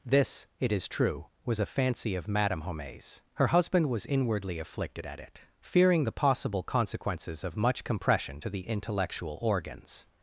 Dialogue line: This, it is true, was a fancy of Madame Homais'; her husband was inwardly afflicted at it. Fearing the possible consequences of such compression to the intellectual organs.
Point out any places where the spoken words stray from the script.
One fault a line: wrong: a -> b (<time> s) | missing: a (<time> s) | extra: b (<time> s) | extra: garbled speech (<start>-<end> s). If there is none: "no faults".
wrong: such -> much (7.5 s)